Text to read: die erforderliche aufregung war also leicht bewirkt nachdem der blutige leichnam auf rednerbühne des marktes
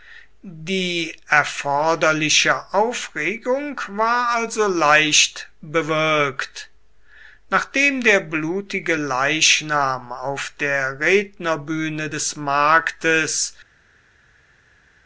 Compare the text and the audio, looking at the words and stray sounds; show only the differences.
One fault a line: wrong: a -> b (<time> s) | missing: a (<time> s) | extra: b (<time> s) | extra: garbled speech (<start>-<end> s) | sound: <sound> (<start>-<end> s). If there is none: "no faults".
extra: der (10.6 s)